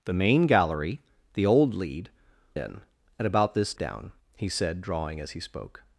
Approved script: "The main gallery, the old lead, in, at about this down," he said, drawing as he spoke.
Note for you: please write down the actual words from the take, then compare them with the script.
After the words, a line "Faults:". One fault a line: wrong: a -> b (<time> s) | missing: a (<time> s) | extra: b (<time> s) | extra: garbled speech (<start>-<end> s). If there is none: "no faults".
"The main gallery, the old lead, in, at about this down," he said, drawing as he spoke.
Faults:
no faults